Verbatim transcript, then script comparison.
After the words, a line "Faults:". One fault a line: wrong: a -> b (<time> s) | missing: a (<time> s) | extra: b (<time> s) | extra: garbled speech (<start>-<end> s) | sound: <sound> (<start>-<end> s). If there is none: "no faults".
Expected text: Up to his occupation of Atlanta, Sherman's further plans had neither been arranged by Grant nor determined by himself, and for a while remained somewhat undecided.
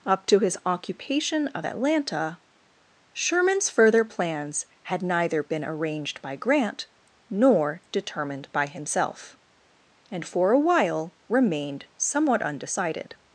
Up to his occupation of Atlanta, Sherman's further plans had neither been arranged by Grant nor determined by himself, and for a while remained somewhat undecided.
Faults:
no faults